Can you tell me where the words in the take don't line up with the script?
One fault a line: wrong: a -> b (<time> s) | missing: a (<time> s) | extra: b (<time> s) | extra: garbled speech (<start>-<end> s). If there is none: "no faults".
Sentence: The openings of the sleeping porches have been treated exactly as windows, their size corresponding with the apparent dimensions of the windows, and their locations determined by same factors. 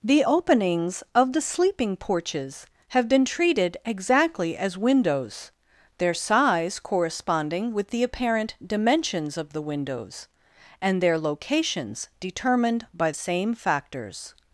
no faults